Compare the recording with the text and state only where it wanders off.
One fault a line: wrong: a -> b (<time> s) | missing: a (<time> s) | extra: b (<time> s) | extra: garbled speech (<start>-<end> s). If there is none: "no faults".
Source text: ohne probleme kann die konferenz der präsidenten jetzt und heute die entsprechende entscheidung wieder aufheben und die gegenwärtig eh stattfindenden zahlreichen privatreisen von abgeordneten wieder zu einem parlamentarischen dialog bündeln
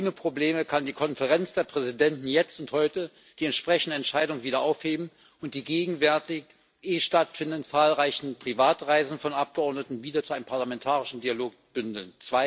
no faults